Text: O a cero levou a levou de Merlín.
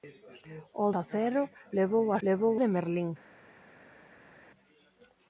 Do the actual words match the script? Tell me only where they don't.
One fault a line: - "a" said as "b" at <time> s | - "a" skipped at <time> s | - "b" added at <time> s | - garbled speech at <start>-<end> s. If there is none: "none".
none